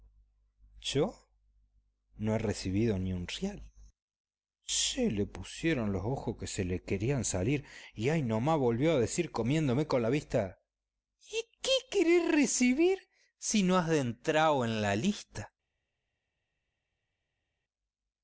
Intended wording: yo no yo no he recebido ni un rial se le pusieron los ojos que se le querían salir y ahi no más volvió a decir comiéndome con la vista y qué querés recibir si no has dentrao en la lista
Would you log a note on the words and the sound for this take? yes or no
yes